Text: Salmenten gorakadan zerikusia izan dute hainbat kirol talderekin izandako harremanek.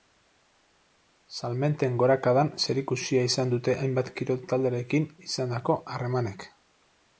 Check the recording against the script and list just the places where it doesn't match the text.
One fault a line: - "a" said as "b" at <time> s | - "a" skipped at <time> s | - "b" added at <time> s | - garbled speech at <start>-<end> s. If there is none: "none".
none